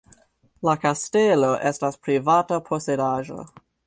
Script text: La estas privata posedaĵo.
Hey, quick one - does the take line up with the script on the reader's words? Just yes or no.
no